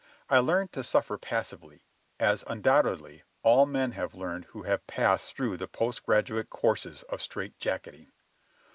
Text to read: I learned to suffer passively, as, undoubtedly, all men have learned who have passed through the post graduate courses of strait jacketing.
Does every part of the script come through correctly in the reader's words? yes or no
yes